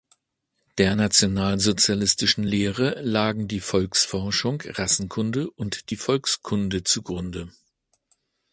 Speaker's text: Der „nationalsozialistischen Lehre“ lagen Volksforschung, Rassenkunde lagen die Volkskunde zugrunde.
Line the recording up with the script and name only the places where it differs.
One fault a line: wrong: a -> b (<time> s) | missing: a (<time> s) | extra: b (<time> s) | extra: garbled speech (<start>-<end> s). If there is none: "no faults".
extra: die (3.5 s)
wrong: lagen -> und (5.5 s)